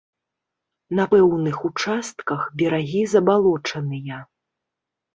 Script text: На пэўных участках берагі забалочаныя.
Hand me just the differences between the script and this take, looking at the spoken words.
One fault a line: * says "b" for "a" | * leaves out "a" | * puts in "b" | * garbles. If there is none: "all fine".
all fine